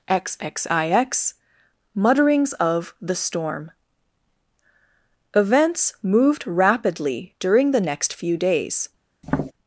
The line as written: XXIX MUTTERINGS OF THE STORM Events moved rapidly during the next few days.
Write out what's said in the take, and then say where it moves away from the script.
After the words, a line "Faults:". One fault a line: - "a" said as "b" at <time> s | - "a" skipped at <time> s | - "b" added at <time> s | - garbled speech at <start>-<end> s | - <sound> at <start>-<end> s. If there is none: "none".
XXIX MUTTERINGS OF THE STORM Events moved rapidly during the next few days.
Faults:
- tap at 9.2-9.5 s